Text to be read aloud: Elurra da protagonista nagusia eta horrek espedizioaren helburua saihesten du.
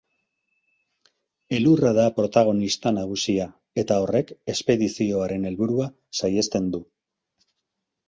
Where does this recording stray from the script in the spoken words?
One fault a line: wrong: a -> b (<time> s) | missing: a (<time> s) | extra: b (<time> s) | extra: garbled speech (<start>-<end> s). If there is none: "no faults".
no faults